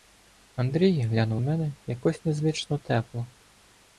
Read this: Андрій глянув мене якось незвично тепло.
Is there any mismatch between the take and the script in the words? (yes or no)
no